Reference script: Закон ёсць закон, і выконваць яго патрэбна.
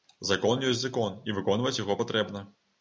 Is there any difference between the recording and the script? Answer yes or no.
no